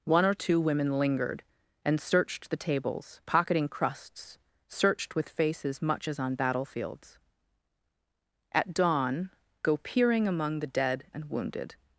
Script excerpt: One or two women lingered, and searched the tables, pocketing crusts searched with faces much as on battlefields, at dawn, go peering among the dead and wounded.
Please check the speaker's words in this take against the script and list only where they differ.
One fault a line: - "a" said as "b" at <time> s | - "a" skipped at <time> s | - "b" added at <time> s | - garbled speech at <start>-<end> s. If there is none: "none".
none